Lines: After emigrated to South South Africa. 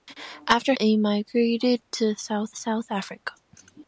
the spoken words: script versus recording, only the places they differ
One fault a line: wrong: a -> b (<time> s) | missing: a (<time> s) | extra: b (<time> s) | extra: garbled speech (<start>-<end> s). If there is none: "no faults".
no faults